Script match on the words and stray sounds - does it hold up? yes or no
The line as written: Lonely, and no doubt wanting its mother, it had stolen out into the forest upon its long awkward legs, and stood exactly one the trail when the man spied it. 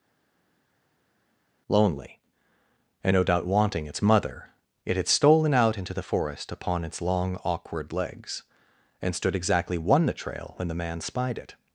yes